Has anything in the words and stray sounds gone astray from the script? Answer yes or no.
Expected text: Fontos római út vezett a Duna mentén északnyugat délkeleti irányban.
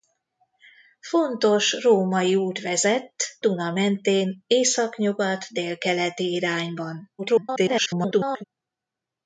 yes